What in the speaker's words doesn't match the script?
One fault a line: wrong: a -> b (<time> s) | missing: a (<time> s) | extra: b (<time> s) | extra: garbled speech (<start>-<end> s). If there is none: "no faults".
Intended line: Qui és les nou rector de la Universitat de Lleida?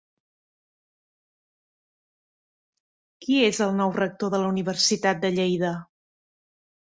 wrong: les -> el (3.6 s)